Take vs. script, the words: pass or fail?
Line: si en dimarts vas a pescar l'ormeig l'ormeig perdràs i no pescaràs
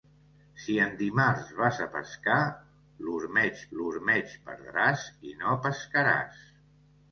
pass